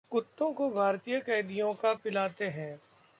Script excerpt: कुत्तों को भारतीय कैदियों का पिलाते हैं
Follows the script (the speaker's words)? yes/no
yes